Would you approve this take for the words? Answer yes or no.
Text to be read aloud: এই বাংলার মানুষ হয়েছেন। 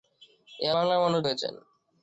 yes